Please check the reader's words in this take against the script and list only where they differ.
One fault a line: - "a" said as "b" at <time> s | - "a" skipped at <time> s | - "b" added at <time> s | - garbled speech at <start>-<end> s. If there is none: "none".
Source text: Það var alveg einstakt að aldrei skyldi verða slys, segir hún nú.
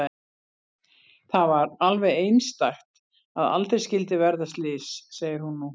none